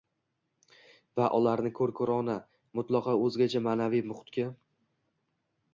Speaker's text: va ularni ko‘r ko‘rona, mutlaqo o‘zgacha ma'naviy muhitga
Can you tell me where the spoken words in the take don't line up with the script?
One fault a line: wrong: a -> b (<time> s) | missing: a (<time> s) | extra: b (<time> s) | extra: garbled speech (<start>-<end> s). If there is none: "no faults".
no faults